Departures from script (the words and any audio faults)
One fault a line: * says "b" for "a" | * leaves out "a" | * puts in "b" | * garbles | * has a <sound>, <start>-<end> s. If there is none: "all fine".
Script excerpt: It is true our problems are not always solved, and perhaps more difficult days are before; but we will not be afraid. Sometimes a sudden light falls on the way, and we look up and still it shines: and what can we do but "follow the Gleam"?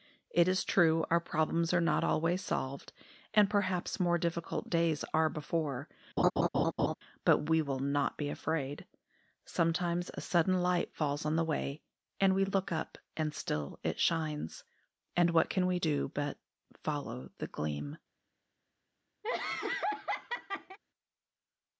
* has a laugh, 6.2-6.9 s
* has a laugh, 19.2-20.8 s